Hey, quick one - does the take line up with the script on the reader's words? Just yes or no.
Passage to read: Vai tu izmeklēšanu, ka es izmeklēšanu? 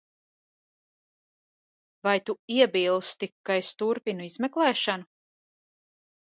no